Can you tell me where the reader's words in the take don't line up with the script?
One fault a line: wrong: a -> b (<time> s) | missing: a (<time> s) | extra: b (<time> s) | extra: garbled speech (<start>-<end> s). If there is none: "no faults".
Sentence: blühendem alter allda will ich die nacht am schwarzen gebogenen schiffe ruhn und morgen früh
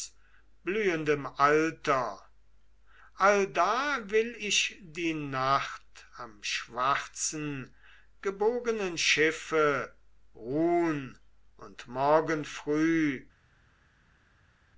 no faults